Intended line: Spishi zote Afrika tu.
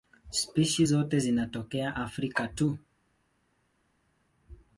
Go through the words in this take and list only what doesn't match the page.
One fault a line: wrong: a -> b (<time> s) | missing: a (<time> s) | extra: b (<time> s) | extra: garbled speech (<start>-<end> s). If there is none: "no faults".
extra: zinatokea (1.2 s)